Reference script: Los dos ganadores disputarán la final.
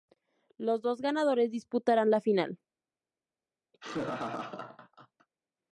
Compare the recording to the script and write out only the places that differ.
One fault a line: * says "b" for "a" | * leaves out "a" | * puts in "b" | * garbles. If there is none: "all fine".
all fine